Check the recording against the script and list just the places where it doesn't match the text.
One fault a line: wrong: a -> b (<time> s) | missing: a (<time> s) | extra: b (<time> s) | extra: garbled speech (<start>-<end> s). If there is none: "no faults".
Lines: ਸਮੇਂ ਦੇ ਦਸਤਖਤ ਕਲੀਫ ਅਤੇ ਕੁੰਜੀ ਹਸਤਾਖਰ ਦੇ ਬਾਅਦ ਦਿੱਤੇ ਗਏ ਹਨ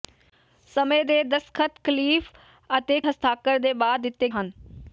missing: ਕੁੰਜੀ (3.0 s)
missing: ਗਏ (4.3 s)